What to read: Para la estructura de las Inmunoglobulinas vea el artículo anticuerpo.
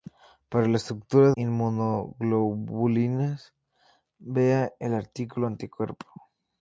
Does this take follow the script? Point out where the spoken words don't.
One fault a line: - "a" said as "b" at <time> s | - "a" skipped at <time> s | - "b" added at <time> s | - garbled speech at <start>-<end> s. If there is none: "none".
- "de las" skipped at 1.3 s